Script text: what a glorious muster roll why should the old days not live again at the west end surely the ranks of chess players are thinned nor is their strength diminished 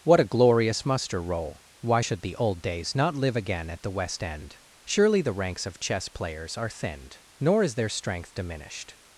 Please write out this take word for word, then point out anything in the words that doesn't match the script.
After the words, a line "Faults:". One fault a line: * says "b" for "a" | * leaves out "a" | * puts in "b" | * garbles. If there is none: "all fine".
what a glorious muster roll why should the old days not live again at the west end surely the ranks of chess players are thinned nor is their strength diminished
Faults:
all fine